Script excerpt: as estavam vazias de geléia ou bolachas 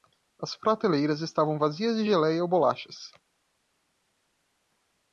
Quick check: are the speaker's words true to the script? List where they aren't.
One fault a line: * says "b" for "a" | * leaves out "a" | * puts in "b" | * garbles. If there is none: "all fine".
* puts in "prateleiras"